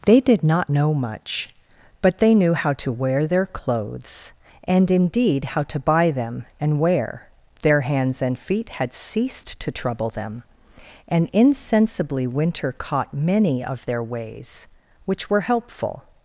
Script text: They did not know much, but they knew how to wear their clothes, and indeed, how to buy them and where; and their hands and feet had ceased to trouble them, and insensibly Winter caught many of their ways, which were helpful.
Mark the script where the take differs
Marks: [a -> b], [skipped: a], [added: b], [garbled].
They did not know much, but they knew how to wear their clothes, and indeed, how to buy them and [where; and -> wear] their hands and feet had ceased to trouble them, and insensibly Winter caught many of their ways, which were helpful.